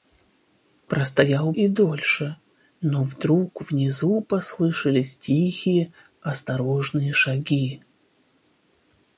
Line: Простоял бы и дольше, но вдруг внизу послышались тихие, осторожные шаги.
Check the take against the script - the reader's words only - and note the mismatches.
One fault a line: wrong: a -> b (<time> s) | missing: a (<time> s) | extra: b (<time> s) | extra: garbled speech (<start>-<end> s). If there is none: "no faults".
missing: бы (1.5 s)